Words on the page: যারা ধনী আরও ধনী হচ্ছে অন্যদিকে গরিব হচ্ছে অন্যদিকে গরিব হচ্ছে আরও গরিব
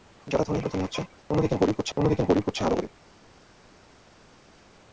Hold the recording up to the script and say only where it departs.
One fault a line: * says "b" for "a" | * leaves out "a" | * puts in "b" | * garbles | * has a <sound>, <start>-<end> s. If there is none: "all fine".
all fine